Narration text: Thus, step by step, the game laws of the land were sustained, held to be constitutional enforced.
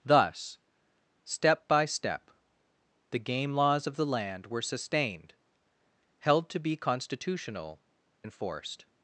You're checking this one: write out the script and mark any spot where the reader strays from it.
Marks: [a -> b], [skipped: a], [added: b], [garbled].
Thus, step by step, the game laws of the land were sustained, held to be constitutional enforced.